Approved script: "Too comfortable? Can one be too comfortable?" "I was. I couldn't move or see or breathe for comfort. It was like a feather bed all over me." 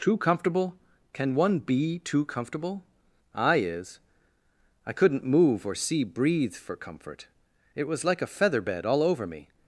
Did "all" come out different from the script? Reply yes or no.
no